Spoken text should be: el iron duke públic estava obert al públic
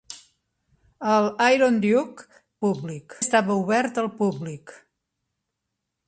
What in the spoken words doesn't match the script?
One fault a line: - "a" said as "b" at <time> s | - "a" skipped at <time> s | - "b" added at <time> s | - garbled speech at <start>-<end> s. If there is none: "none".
none